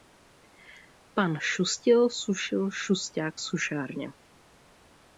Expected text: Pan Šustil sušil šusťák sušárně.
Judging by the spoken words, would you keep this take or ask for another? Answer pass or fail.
pass